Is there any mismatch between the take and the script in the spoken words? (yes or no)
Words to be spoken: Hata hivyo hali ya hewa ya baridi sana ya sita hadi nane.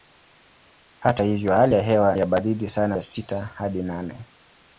no